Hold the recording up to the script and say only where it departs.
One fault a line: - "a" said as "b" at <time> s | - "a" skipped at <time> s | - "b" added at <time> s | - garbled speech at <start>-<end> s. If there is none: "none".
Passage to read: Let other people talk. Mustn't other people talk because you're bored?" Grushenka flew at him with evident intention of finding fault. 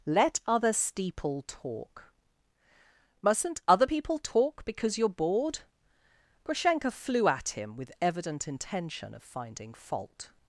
- "people" said as "steeple" at 0.7 s